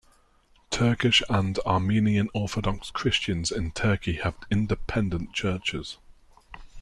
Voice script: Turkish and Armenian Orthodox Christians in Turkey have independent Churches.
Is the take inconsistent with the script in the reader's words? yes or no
no